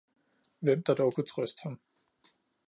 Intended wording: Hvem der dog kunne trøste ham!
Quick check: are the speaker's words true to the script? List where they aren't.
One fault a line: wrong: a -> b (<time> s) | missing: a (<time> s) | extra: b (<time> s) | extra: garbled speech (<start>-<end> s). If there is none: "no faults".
no faults